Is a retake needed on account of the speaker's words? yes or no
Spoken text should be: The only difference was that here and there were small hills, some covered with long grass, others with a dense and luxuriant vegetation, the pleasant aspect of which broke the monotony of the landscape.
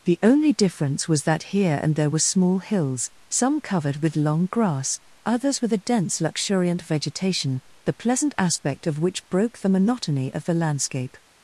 yes